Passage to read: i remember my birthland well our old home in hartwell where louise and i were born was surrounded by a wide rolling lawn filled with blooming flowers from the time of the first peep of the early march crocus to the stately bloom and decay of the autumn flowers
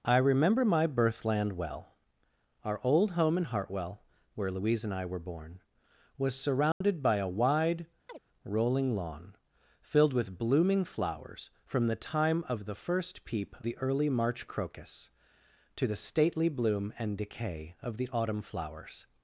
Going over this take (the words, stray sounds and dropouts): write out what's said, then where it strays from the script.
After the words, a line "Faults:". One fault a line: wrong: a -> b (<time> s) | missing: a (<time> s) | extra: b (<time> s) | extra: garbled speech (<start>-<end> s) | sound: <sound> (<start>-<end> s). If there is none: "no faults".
i remember my birthland well our old home in hartwell where louise and i were born was surrounded by a wide rolling lawn filled with blooming flowers from the time of the first peep the early march crocus to the stately bloom and decay of the autumn flowers
Faults:
sound: dropout (6.7-6.8 s)
sound: chirp (8.1-8.2 s)
missing: of (13.6 s)